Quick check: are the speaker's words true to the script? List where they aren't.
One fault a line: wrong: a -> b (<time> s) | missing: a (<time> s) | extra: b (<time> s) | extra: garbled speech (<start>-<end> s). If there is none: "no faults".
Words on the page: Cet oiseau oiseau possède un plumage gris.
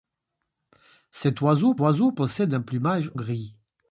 no faults